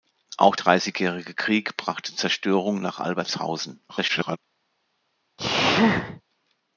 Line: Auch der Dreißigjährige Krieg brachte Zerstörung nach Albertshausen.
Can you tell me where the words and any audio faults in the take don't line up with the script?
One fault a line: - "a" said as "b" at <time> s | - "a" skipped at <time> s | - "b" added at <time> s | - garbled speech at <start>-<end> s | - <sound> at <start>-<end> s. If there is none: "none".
- "der" skipped at 0.6 s
- garbled speech at 3.9-4.4 s
- sneeze at 5.4-6.2 s